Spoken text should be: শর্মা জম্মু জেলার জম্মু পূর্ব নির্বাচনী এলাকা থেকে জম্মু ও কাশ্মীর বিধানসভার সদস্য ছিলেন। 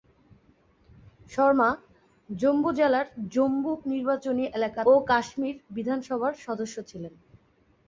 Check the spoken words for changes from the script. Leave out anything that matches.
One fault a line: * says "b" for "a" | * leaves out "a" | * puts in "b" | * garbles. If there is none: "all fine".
* leaves out "পূর্ব"
* leaves out "থেকে জম্মু"